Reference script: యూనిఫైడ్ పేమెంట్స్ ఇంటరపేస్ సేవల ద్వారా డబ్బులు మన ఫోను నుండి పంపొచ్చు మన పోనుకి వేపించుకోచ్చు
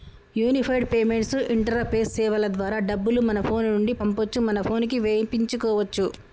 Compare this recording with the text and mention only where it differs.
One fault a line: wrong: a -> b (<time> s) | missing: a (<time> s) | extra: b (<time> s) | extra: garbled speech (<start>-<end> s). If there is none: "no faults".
no faults